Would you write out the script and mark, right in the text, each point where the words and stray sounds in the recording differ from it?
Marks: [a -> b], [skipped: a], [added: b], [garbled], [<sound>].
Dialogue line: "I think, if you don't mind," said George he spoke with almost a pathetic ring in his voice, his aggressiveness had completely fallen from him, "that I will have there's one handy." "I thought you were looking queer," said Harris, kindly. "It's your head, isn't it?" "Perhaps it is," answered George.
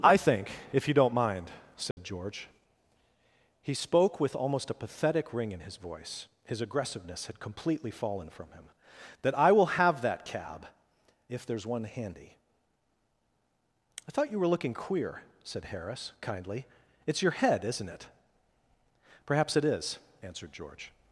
"I think, if you don't mind," said [dropout] George he spoke with almost a pathetic ring in his voice, his aggressiveness had completely fallen from him, "that I will have [added: that cab if] there's one handy." "I thought you were looking queer," said Harris, kindly. "It's your head, isn't it?" "Perhaps it is," answered George.